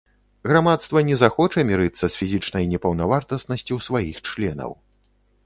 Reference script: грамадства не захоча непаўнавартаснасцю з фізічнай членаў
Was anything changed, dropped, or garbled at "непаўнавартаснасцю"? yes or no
yes